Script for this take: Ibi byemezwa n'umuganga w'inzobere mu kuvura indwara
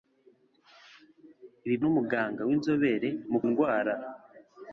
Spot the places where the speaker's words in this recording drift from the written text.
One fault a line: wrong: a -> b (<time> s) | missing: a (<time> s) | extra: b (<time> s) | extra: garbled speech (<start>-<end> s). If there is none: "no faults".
missing: byemezwa (1.8 s)
missing: kuvura (3.4 s)